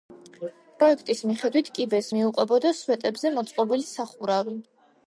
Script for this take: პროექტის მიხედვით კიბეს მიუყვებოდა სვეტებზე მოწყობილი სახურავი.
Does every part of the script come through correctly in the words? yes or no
yes